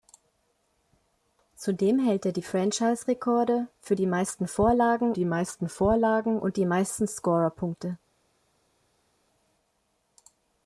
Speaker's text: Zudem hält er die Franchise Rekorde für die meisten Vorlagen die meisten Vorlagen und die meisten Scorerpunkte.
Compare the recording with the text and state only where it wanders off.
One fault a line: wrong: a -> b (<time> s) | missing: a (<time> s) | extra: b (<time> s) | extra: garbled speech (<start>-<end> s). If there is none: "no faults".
no faults